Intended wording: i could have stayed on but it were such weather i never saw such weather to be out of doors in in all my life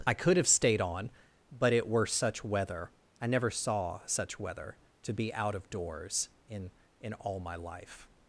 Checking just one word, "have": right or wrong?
right